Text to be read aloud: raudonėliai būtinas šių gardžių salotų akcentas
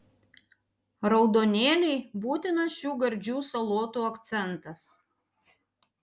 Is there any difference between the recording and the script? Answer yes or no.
no